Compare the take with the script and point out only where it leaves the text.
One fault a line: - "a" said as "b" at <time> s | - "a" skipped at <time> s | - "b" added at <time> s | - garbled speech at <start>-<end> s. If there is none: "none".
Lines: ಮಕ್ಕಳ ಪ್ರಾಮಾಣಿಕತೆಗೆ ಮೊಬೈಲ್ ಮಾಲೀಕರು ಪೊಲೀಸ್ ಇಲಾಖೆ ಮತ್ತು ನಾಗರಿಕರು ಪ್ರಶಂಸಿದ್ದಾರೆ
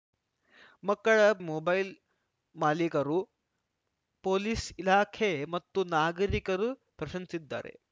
- "ಪ್ರಾಮಾಣಿಕತೆಗೆ" skipped at 1.2 s